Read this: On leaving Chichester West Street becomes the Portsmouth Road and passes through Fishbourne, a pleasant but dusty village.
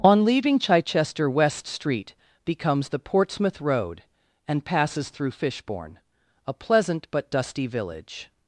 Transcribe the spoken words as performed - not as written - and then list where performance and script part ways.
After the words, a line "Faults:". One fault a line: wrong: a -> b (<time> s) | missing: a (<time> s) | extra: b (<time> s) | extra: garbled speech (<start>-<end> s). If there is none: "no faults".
On leaving Chichester West Street becomes the Portsmouth Road and passes through Fishbourne, a pleasant but dusty village.
Faults:
no faults